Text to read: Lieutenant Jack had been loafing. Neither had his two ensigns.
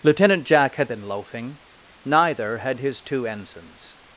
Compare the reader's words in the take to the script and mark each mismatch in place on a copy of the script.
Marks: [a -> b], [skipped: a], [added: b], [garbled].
Lieutenant Jack had been loafing. Neither had his two ensigns.